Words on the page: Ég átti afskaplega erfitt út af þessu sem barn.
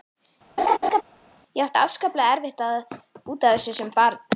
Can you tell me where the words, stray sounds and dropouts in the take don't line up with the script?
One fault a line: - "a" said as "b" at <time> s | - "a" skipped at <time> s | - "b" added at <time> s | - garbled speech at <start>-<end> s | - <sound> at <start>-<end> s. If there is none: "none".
- laugh at 0.6-1.0 s